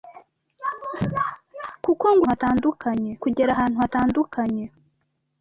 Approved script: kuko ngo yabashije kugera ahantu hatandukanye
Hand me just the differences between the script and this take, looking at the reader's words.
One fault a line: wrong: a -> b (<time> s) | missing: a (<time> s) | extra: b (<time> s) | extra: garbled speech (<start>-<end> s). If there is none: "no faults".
wrong: yabashije -> hatandukanye (2.3 s)